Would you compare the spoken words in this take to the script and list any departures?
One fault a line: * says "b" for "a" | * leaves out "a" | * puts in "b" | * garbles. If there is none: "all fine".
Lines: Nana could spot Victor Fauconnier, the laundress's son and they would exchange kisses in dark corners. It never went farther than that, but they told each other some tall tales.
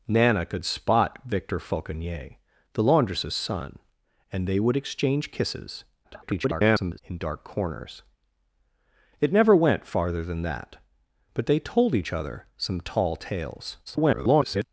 * garbles
* garbles